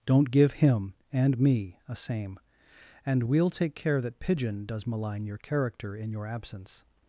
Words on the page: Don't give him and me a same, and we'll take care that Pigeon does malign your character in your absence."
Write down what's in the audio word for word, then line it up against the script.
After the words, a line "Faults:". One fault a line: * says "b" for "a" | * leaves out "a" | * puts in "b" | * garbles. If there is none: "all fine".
Don't give him and me a same, and we'll take care that Pigeon does malign your character in your absence."
Faults:
all fine